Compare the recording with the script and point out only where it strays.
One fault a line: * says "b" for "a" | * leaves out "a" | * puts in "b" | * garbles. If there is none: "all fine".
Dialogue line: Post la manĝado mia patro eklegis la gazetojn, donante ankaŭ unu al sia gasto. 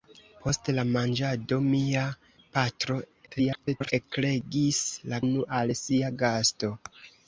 * garbles
* leaves out "gazetojn donante ankaŭ"